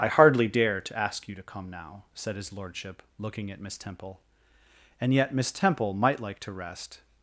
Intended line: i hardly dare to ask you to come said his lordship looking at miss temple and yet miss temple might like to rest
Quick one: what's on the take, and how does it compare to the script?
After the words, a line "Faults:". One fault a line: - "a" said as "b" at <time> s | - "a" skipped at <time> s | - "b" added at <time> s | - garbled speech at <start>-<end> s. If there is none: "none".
i hardly dare to ask you to come now said his lordship looking at miss temple and yet miss temple might like to rest
Faults:
- "now" added at 1.7 s